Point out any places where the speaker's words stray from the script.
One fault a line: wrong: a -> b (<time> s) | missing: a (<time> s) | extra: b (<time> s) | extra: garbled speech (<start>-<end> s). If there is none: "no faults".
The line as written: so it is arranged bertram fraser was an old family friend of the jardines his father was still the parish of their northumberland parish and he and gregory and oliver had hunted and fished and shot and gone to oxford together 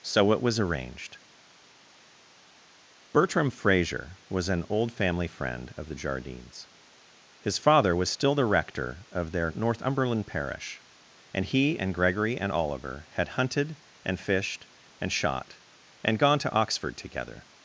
wrong: is -> was (0.4 s)
wrong: parish -> rector (8.5 s)